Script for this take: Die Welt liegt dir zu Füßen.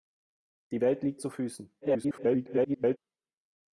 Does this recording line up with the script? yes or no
no